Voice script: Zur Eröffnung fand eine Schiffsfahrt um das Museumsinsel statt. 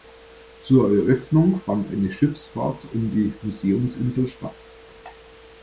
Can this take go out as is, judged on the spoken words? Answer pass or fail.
fail